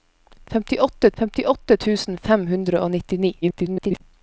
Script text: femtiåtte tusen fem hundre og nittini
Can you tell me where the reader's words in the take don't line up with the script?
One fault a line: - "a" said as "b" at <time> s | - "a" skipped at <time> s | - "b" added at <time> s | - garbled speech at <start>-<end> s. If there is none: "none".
- "femtiåtte" added at 1.2 s
- garbled speech at 3.4-4.0 s